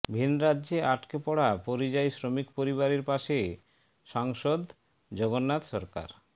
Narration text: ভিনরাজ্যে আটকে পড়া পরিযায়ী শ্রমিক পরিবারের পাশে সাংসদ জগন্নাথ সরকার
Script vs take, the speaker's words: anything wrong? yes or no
no